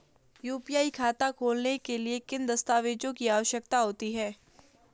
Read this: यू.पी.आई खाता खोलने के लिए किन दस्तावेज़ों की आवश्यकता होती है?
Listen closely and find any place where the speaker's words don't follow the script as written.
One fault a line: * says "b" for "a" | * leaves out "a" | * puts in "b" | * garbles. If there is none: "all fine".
all fine